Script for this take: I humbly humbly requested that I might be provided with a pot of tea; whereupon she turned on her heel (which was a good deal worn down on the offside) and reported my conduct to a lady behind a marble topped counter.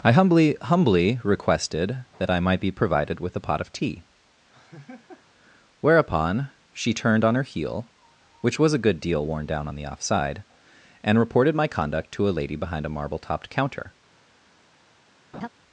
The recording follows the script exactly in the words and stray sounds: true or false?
false